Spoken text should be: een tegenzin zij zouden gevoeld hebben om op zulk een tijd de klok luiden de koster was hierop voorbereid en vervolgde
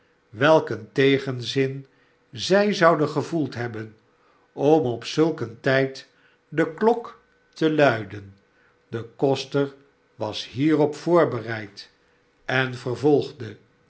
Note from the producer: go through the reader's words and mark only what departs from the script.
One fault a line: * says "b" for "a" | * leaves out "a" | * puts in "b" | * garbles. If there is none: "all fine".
* puts in "te"